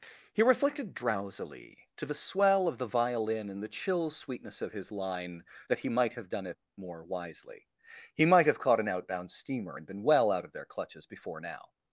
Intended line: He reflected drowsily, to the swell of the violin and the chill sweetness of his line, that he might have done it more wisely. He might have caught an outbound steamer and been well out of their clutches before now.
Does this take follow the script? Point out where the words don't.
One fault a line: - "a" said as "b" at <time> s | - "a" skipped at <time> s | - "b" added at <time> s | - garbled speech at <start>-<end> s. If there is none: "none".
none